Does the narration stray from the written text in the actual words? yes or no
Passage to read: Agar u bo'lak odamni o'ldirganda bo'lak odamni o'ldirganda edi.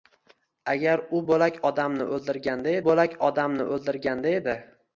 no